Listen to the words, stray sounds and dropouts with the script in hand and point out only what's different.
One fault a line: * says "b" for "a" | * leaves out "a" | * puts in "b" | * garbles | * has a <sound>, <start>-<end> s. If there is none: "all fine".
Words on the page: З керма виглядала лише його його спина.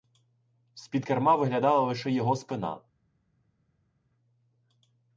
* puts in "під"
* leaves out "його"